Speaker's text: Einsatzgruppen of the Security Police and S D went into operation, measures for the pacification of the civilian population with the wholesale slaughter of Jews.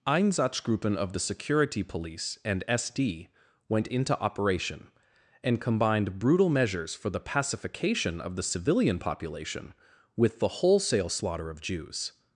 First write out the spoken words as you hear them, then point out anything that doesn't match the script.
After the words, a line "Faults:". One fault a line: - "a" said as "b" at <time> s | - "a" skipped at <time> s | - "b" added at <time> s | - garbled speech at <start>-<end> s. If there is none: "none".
Einsatzgruppen of the Security Police and S D went into operation, and combined brutal measures for the pacification of the civilian population with the wholesale slaughter of Jews.
Faults:
- "and combined brutal" added at 5.4 s